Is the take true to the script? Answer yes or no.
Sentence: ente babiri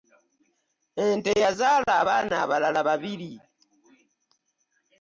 no